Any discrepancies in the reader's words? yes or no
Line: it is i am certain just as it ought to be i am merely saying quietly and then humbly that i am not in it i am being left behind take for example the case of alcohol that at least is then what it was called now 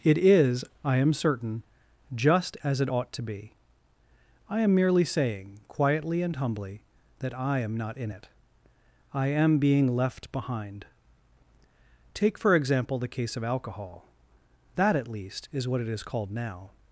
yes